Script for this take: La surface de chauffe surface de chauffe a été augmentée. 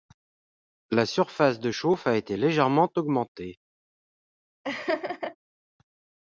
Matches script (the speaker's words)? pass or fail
fail